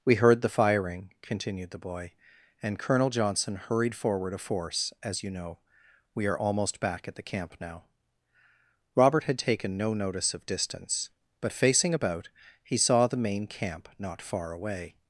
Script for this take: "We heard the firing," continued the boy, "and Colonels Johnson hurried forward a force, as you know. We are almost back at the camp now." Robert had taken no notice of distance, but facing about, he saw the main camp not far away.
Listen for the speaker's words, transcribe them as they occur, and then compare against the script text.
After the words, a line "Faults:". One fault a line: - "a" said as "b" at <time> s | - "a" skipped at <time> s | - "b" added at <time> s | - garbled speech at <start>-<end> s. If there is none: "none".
"We heard the firing," continued the boy, "and Colonel Johnson hurried forward a force, as you know. We are almost back at the camp now." Robert had taken no notice of distance, but facing about, he saw the main camp not far away.
Faults:
- "Colonels" said as "Colonel" at 2.8 s